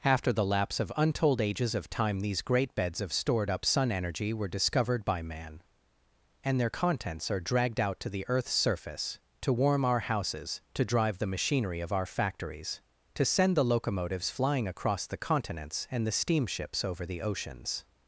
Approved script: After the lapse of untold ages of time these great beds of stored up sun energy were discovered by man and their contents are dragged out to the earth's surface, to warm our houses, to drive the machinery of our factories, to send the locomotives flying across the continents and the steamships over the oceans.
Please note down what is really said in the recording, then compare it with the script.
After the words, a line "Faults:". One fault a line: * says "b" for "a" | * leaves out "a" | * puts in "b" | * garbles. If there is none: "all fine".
After the lapse of untold ages of time these great beds of stored up sun energy were discovered by man and their contents are dragged out to the earth's surface, to warm our houses, to drive the machinery of our factories, to send the locomotives flying across the continents and the steamships over the oceans.
Faults:
all fine